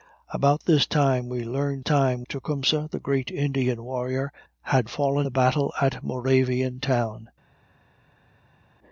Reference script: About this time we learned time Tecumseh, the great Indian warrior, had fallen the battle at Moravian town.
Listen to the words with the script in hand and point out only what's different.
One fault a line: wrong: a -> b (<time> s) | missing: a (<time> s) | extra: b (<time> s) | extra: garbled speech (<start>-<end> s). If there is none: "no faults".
no faults